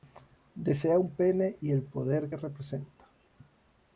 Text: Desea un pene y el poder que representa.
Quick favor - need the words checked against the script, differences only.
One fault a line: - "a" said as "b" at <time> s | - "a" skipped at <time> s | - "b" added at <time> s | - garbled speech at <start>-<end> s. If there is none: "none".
none